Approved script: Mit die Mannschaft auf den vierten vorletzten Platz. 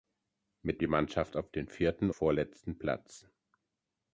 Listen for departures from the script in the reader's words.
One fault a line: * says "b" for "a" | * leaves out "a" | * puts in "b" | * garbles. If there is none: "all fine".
all fine